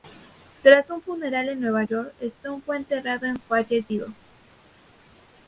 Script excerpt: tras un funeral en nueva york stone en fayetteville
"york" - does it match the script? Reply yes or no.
yes